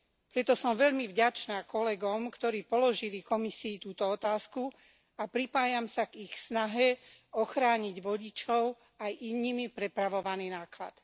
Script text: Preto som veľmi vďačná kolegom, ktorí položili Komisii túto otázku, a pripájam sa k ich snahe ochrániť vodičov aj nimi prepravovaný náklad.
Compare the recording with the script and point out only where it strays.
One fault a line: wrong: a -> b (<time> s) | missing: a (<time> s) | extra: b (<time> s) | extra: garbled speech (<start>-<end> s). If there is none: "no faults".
no faults